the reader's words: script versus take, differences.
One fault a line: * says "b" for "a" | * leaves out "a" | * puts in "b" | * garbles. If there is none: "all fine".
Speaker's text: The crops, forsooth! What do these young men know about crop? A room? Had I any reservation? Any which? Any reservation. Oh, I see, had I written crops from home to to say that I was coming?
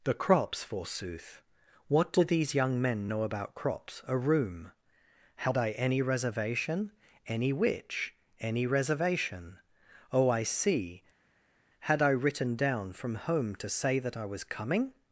* says "crops" for "crop"
* says "down" for "crops"
* leaves out "to"